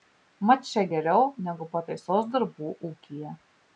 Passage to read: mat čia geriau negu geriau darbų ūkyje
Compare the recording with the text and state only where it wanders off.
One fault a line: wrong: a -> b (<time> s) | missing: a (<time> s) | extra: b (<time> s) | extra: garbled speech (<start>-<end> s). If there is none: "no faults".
wrong: geriau -> pataisos (1.8 s)